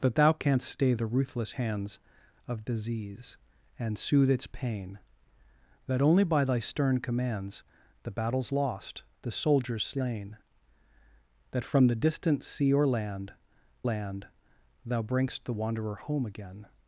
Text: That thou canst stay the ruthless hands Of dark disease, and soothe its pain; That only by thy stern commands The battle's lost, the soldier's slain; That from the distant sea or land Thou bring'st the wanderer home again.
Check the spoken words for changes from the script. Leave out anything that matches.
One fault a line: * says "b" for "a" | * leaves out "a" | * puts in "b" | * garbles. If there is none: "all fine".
* leaves out "dark"
* puts in "land"